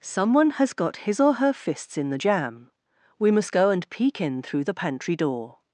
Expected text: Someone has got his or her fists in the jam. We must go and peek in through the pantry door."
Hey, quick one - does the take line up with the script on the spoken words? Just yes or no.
yes